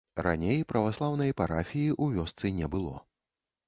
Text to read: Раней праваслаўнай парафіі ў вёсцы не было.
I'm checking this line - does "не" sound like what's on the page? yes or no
yes